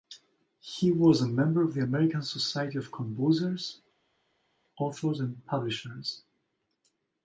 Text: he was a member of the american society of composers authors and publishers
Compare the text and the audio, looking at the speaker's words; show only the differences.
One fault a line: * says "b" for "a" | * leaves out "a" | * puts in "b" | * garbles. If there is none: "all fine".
all fine